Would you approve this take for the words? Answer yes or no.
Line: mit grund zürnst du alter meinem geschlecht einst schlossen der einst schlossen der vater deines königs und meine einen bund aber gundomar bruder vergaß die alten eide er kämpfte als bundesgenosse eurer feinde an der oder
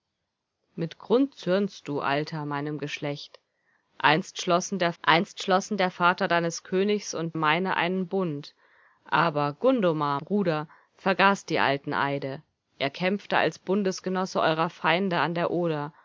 yes